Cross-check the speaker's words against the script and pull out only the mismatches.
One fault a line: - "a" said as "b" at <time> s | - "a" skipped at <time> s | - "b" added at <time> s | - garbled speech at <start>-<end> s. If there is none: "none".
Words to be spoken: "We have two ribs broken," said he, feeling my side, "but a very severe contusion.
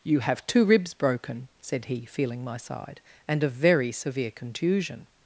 - "We" said as "You" at 0.0 s
- "but" said as "and" at 3.3 s